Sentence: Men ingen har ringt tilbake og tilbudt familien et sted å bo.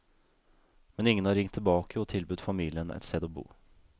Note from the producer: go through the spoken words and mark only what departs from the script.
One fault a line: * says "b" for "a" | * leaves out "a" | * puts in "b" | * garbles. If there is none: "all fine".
all fine